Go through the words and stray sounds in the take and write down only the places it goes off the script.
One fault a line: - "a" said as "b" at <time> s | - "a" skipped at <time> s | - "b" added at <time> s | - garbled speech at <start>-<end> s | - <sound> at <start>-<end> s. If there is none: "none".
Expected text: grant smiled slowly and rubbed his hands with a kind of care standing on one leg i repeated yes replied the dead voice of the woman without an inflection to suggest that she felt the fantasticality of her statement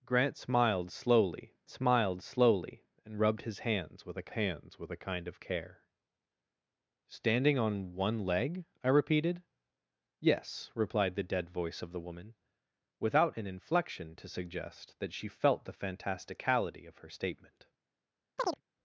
- "smiled slowly" added at 1.7 s
- "hands with a" added at 4.3 s
- chirp at 18.4-18.6 s